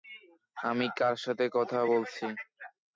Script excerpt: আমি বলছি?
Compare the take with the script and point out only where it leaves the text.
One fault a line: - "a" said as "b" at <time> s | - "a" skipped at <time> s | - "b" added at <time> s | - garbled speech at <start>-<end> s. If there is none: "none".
- "কার সাথে কথা" added at 1.0 s